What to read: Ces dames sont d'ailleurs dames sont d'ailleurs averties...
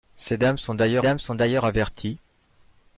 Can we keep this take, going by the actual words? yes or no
yes